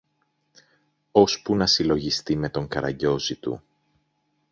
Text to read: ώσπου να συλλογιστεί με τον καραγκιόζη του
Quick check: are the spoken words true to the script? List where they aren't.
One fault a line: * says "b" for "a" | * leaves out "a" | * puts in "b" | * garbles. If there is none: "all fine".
all fine